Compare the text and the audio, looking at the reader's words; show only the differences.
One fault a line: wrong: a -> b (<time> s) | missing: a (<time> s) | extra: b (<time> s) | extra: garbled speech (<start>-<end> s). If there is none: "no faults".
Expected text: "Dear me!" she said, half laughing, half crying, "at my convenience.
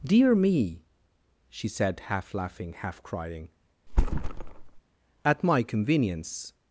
no faults